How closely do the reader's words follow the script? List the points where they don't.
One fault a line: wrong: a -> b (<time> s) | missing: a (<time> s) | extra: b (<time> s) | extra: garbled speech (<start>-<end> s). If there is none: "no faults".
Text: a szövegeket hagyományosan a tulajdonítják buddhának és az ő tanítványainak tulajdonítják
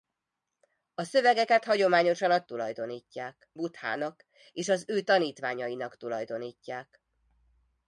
no faults